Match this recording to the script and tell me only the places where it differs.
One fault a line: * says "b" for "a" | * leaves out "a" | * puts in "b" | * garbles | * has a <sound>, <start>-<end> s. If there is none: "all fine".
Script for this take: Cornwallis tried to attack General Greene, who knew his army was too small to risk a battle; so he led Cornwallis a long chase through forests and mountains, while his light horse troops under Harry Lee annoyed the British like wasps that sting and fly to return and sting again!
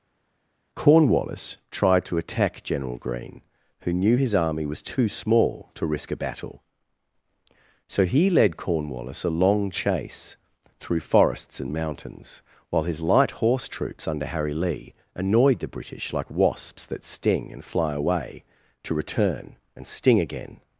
* puts in "away"